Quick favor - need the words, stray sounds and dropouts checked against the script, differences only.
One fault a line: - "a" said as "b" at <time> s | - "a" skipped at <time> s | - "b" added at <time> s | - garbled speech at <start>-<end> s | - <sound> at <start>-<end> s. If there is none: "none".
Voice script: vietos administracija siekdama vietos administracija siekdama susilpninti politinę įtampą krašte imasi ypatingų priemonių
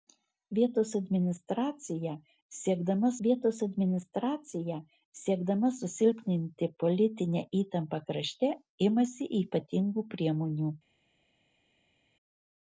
none